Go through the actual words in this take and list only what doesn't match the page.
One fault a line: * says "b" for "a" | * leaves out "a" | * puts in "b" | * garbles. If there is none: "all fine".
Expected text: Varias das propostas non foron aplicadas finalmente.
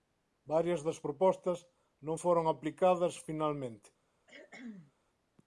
all fine